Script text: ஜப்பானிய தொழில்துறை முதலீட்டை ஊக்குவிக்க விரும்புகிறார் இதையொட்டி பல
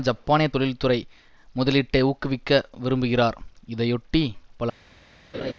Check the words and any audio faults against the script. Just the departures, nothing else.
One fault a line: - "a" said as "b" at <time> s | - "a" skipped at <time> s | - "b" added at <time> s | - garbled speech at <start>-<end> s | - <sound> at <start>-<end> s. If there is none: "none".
- laugh at 5.3-5.5 s